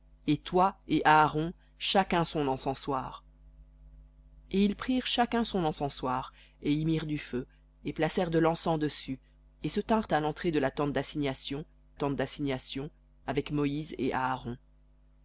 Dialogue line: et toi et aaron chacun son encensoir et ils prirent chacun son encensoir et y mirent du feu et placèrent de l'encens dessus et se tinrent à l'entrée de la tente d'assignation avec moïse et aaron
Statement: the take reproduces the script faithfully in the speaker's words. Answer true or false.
false